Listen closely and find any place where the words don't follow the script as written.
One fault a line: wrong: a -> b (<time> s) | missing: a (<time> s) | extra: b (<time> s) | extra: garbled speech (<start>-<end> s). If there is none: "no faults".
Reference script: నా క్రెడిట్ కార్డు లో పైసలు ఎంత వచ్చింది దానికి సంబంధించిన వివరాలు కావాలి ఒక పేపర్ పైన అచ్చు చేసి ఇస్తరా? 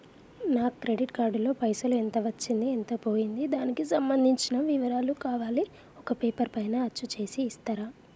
extra: ఎంత పోయింది (2.7 s)